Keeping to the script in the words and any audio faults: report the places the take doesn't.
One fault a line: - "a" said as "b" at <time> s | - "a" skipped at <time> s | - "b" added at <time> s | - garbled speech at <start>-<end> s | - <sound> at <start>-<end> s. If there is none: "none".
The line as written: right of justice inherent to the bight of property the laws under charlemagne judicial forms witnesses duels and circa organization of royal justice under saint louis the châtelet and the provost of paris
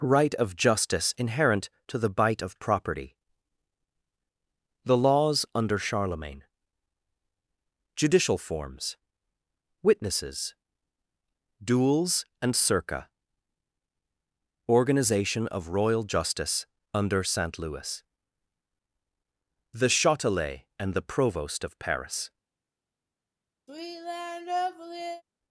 - sigh at 23.7-25.2 s